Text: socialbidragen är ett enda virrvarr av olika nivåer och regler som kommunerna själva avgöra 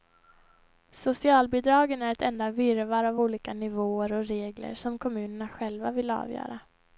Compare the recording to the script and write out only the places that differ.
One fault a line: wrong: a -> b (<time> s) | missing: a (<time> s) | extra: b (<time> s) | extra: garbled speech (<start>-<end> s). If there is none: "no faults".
extra: vill (5.9 s)